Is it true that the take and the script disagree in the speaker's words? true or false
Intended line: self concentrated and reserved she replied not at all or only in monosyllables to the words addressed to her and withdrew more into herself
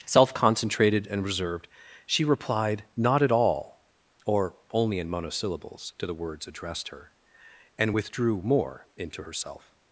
true